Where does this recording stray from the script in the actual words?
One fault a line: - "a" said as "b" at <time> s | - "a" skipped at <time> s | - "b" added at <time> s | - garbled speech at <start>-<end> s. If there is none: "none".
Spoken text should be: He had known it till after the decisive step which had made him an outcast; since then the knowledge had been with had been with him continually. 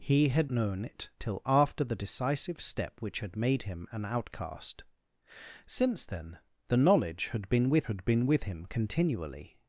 none